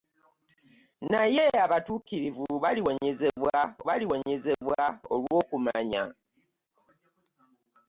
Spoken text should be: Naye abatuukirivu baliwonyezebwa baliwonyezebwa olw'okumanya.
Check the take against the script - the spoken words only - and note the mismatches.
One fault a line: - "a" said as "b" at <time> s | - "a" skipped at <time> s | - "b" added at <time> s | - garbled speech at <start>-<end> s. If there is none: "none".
none